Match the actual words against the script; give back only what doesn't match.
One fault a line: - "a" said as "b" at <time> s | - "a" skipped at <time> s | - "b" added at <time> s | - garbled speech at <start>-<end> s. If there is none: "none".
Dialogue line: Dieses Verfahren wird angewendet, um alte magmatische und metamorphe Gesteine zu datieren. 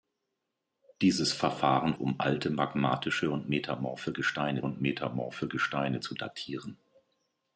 - "wird angewendet" skipped at 2.0 s
- "und metamorphe Gesteine" added at 4.6 s